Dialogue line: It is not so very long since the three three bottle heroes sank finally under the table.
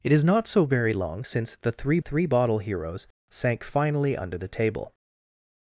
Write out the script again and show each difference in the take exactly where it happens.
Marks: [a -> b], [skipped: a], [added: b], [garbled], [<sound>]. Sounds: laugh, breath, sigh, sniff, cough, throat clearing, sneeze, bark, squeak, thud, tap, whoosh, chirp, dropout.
It is not so very long since the three three bottle heroes sank finally under the table.